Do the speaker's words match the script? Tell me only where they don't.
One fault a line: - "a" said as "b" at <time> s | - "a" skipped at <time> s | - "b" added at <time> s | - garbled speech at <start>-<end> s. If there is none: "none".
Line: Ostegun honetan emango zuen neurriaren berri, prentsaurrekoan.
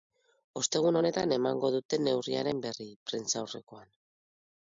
- "zuen" said as "dute" at 1.7 s